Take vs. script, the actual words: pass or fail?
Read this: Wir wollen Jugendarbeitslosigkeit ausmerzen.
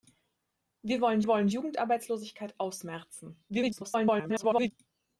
fail